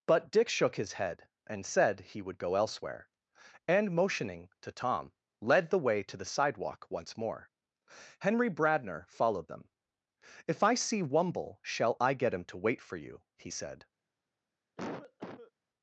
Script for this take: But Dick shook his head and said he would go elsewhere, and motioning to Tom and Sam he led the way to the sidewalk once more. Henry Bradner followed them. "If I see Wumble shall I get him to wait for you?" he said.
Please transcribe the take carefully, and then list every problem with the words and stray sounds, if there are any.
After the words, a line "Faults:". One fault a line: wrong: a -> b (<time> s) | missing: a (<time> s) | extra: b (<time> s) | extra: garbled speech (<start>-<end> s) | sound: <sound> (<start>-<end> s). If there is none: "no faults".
But Dick shook his head and said he would go elsewhere, and motioning to Tom led the way to the sidewalk once more. Henry Bradner followed them. "If I see Wumble shall I get him to wait for you?" he said.
Faults:
missing: and Sam he (5.1 s)
sound: cough (14.8-15.5 s)